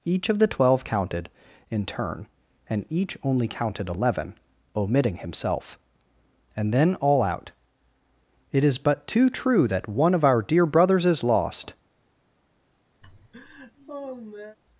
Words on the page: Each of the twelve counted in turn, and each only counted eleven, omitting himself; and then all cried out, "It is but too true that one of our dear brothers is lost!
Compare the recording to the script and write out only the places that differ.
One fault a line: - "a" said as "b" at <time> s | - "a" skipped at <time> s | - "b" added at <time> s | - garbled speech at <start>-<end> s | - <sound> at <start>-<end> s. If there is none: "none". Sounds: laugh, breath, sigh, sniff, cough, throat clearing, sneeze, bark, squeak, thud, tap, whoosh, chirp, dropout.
- "cried" skipped at 7.2 s
- laugh at 13.0-14.6 s